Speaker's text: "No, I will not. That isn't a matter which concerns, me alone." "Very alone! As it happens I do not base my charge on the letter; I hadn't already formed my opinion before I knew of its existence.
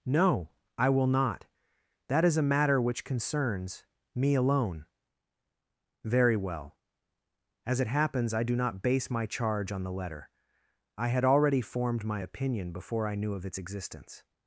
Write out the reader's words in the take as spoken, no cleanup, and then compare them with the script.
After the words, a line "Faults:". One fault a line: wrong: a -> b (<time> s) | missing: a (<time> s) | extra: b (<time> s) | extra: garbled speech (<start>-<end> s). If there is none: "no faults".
"No, I will not. That is a matter which concerns, me alone." "Very well! As it happens I do not base my charge on the letter; I had already formed my opinion before I knew of its existence.
Faults:
wrong: isn't -> is (2.2 s)
wrong: alone -> well (6.3 s)
wrong: hadn't -> had (11.1 s)